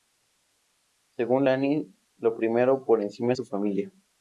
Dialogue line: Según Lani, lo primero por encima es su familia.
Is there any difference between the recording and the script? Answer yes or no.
no